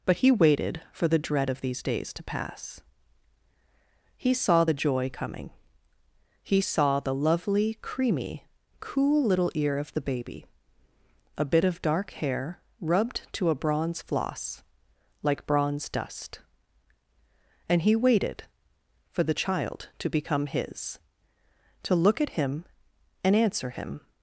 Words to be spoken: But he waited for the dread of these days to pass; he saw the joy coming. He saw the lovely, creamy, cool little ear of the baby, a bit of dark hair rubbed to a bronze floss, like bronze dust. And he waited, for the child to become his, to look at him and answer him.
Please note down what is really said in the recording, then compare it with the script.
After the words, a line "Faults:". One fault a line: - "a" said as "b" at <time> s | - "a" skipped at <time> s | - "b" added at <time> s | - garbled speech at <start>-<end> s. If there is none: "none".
But he waited for the dread of these days to pass; he saw the joy coming. He saw the lovely, creamy, cool little ear of the baby, a bit of dark hair rubbed to a bronze floss, like bronze dust. And he waited, for the child to become his, to look at him and answer him.
Faults:
none